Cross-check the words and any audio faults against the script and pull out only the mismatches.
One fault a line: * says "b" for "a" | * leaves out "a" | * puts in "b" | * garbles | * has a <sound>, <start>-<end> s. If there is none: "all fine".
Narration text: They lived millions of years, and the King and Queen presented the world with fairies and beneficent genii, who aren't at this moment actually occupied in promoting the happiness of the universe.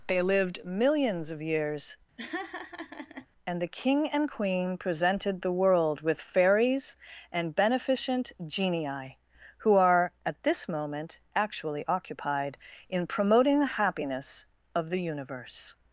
* has a laugh, 2.2-3.3 s
* says "are" for "aren't"